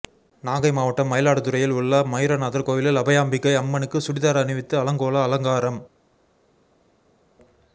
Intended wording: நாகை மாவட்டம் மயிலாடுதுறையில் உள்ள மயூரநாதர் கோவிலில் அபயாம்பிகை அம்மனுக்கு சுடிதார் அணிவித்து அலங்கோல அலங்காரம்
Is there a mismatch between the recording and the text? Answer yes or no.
no